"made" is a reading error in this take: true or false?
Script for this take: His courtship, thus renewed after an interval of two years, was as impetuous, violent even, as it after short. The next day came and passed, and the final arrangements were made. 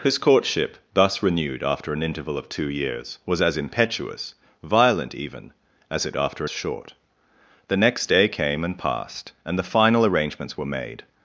false